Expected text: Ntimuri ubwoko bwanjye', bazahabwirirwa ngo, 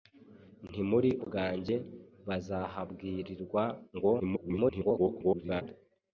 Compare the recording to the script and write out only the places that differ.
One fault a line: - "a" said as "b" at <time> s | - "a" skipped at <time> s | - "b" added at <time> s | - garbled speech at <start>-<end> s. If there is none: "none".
- "ubwoko" skipped at 1.1 s
- garbled speech at 4.2-5.6 s